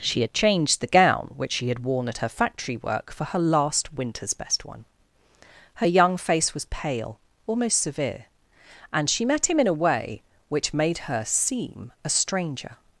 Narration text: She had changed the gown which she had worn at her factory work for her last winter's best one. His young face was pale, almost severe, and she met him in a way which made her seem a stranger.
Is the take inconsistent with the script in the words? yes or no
yes